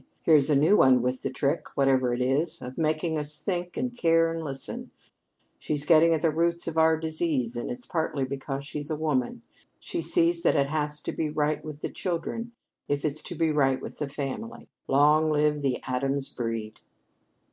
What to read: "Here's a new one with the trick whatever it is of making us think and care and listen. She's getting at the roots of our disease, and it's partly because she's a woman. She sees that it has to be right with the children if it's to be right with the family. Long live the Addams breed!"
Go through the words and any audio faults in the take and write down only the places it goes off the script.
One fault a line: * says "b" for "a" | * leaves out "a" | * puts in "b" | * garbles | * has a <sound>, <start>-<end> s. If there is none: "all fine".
all fine